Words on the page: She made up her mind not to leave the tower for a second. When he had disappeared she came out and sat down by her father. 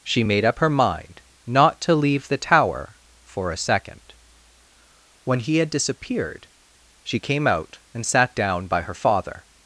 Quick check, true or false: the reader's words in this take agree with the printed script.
true